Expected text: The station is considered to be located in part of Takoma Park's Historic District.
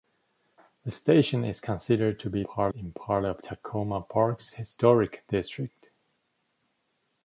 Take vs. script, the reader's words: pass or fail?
fail